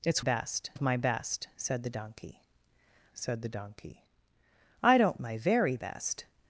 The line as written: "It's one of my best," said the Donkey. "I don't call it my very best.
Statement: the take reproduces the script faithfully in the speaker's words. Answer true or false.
false